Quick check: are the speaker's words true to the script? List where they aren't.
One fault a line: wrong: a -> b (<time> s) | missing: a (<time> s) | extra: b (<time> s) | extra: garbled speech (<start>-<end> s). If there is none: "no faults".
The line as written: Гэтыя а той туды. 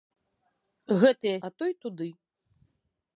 no faults